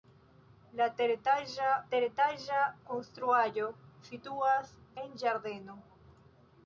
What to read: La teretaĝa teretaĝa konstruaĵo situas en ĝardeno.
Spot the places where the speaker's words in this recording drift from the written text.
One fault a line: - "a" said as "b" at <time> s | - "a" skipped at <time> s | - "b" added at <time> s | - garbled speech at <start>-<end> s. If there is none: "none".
none